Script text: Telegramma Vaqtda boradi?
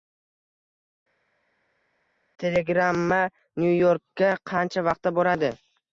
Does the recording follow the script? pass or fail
fail